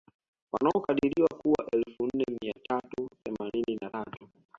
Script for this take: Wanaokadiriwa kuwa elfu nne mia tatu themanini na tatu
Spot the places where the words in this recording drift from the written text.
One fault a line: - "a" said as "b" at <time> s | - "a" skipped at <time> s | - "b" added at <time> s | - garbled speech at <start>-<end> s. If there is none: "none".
none